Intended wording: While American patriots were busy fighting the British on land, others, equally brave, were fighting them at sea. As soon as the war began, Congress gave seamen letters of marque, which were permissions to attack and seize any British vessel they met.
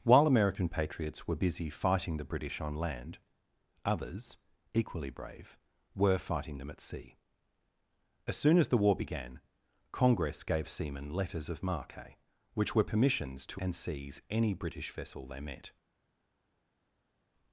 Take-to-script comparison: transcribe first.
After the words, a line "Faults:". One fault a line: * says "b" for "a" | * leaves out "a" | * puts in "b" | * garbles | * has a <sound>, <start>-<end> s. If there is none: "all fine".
While American patriots were busy fighting the British on land, others, equally brave, were fighting them at sea. As soon as the war began, Congress gave seamen letters of marque, which were permissions to and seize any British vessel they met.
Faults:
* leaves out "attack"